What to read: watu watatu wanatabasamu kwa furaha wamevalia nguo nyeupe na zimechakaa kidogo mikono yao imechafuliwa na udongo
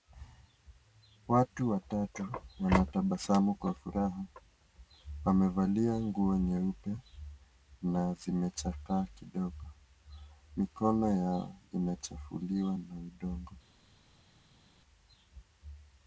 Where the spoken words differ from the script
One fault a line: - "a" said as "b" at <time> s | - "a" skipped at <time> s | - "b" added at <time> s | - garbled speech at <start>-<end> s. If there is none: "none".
none